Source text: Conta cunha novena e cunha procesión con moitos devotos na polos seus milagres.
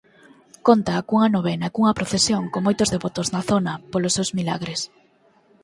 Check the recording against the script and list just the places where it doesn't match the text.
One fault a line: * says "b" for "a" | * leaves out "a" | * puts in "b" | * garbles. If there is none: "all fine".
* puts in "zona"